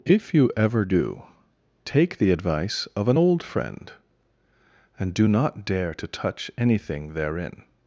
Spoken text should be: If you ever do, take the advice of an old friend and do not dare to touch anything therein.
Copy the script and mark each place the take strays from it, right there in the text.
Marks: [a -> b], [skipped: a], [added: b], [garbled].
If you ever do, take the advice of an old friend and do not dare to touch anything therein.